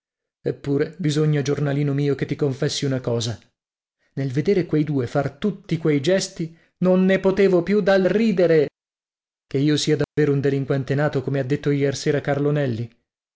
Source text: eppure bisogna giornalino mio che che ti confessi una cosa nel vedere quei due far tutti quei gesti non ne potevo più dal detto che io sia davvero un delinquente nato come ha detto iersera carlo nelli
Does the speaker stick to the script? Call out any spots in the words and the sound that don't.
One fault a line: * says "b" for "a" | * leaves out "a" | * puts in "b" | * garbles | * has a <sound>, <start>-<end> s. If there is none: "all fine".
* leaves out "che"
* says "ridere" for "detto"
* has a dropout, 10.0-10.2 s